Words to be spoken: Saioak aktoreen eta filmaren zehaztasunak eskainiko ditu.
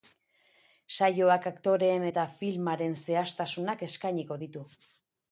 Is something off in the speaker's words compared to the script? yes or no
no